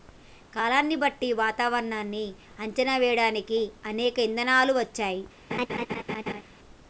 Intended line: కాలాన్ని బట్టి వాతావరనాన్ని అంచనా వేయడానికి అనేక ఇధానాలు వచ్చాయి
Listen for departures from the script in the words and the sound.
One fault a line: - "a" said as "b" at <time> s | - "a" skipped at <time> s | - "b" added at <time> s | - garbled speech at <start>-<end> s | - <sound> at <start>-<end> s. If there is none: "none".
- laugh at 5.5-6.4 s